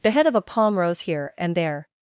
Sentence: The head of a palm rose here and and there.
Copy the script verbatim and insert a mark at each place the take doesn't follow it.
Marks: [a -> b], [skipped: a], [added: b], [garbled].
The head of a palm rose here and [skipped: and] there.